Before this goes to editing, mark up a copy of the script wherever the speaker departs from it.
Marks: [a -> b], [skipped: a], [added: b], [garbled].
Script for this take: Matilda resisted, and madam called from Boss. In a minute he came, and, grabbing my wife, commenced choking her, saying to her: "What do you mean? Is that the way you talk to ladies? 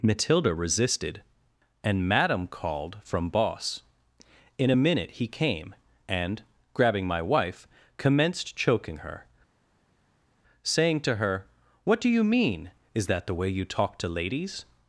Matilda resisted, and madam called from Boss. In a minute he came, and, grabbing my wife, commenced choking her, saying to her: "What do you mean? Is that the way you talk to ladies?